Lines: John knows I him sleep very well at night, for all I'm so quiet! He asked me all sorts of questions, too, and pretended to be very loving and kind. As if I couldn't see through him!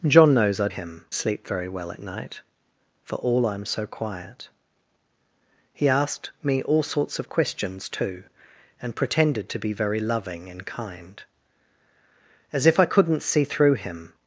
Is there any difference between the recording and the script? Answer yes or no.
no